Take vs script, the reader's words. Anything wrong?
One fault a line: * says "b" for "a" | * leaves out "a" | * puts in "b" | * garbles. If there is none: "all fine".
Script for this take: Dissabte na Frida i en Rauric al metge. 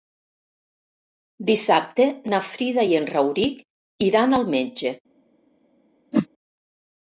* puts in "iran"